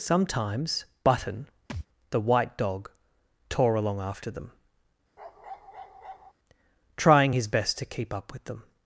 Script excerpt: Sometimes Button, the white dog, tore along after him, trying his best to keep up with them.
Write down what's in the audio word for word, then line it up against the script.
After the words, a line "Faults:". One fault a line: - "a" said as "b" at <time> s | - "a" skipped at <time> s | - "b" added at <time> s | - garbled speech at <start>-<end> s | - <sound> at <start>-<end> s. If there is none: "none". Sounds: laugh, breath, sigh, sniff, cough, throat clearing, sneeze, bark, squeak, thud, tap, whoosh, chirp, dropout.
Sometimes Button, the white dog, tore along after them, trying his best to keep up with them.
Faults:
- thud at 1.7-1.9 s
- "him" said as "them" at 4.3 s
- bark at 5.2-6.3 s